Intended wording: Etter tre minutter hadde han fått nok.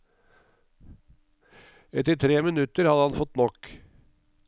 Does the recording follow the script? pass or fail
pass